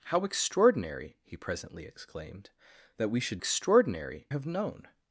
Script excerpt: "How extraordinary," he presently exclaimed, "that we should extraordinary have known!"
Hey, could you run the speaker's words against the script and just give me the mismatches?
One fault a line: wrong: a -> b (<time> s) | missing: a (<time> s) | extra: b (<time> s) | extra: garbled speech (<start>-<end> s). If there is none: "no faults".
no faults